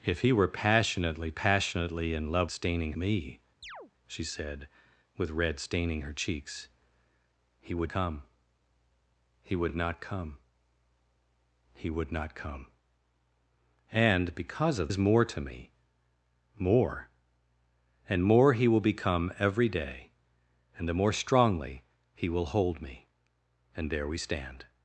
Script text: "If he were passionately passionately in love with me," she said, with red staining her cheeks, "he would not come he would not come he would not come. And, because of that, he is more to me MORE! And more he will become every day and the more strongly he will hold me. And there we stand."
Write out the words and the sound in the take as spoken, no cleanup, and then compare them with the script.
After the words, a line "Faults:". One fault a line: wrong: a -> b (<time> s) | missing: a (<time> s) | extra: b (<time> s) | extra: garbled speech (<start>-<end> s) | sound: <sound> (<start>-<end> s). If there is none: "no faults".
"If he were passionately passionately in love staining me," she said, with red staining her cheeks, "he would come he would not come he would not come. And, because of is more to me MORE! And more he will become every day and the more strongly he will hold me. And there we stand."
Faults:
wrong: with -> staining (2.5 s)
sound: chirp (3.6-3.9 s)
missing: not (7.9 s)
missing: that he (14.9 s)